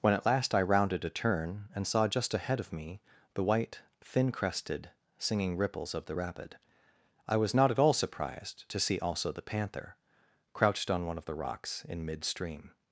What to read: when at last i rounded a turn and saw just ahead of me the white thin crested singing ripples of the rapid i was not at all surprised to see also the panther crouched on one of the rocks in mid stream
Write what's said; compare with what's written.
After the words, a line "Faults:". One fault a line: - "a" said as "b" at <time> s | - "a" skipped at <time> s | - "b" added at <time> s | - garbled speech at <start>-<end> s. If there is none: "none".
when at last i rounded a turn and saw just ahead of me the white thin crested singing ripples of the rapid i was not at all surprised to see also the panther crouched on one of the rocks in mid stream
Faults:
none